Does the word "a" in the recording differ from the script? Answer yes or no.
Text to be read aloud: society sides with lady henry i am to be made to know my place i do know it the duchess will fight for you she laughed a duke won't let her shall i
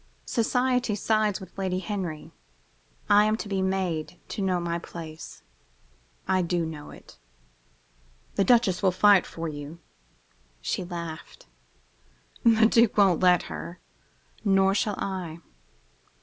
yes